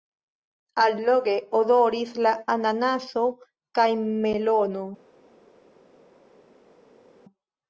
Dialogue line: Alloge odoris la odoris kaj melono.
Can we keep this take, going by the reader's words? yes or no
no